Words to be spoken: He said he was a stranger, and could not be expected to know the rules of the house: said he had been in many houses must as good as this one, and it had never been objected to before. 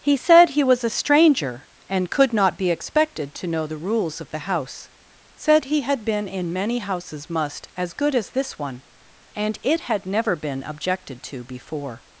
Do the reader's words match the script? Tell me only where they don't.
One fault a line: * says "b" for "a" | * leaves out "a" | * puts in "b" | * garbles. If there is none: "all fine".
all fine